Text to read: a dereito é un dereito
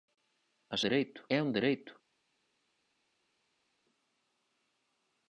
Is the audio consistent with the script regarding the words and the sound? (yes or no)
yes